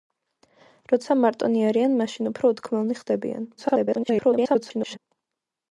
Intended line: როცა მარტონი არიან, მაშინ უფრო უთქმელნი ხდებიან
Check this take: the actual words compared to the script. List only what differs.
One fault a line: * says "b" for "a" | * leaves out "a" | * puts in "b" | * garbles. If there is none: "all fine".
* garbles